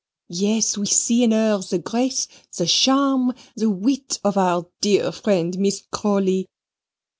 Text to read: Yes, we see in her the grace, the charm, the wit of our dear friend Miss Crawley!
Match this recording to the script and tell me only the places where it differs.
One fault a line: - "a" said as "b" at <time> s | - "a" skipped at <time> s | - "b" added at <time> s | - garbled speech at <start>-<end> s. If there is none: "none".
none